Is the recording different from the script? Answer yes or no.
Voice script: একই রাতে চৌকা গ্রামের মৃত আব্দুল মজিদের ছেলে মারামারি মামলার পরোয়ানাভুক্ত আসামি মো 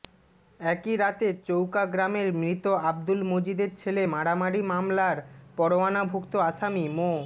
no